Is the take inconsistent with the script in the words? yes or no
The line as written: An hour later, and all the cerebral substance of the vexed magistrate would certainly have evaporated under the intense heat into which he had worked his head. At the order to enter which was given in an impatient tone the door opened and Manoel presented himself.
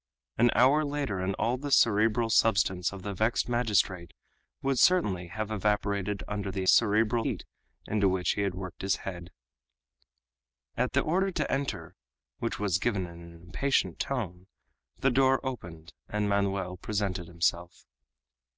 yes